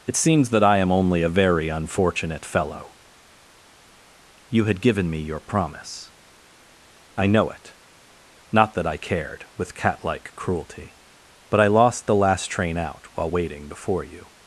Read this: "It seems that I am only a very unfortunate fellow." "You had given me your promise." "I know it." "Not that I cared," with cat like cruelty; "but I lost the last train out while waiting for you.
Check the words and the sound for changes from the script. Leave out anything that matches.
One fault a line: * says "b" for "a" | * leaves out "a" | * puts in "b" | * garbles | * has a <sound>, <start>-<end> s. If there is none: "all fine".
* says "before" for "for"